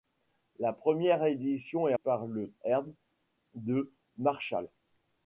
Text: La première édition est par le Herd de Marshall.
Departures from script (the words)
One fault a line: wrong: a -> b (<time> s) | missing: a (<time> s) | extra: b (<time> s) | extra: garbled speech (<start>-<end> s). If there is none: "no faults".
no faults